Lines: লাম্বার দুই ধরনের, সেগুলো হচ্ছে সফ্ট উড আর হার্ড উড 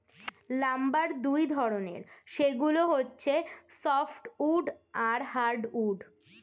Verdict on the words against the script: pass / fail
pass